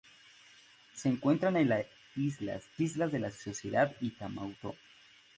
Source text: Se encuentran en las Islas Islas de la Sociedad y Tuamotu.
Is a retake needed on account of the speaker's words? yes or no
no